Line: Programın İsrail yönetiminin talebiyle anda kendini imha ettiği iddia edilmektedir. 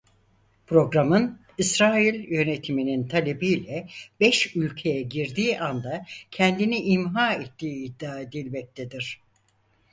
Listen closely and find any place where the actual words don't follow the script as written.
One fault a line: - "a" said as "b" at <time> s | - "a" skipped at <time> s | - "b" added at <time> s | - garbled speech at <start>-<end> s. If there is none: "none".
- "beş ülkeye girdiği" added at 4.2 s